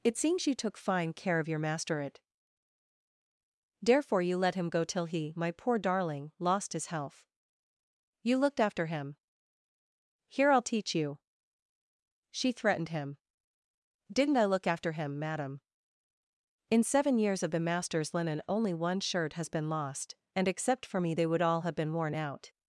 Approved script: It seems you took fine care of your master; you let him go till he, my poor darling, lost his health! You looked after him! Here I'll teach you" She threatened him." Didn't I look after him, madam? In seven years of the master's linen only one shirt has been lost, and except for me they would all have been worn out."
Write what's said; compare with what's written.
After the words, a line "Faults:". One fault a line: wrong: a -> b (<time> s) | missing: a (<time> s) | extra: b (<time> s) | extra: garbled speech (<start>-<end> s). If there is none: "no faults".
It seems you took fine care of your master; it therefore you let him go till he, my poor darling, lost his health! You looked after him! Here I'll teach you" She threatened him." Didn't I look after him, madam? In seven years of the master's linen only one shirt has been lost, and except for me they would all have been worn out."
Faults:
extra: it therefore (2.0 s)